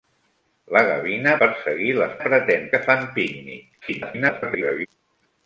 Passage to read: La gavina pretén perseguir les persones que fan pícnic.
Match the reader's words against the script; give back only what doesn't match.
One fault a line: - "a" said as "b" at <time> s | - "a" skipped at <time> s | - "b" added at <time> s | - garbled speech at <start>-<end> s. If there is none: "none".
- "pretén" skipped at 1.4 s
- "persones" said as "pretén" at 2.2 s
- garbled speech at 3.8-4.9 s